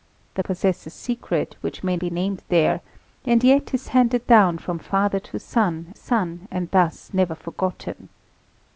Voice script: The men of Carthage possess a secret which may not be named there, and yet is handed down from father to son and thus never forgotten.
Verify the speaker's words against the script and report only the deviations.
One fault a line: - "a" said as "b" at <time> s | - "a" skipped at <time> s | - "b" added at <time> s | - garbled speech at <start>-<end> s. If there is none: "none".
- "men of Carthage" skipped at 0.4 s
- "not" skipped at 2.0 s
- "son" added at 5.9 s